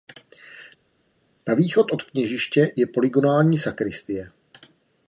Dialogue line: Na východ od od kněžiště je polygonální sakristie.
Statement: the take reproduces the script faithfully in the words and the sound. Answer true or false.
false